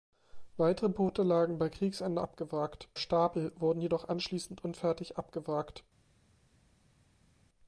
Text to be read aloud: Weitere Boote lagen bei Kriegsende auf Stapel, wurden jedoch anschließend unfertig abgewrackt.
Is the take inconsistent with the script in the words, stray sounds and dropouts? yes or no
yes